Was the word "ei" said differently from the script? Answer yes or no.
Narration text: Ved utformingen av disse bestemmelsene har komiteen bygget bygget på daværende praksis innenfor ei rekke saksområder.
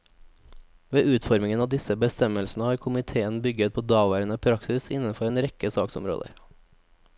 yes